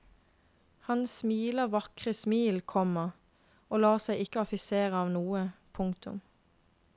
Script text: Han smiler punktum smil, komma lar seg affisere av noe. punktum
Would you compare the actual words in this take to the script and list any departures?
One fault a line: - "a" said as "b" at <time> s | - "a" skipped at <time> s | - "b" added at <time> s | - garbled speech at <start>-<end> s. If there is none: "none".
- "punktum" said as "vakre" at 1.8 s
- "og" added at 3.7 s
- "ikke" added at 4.2 s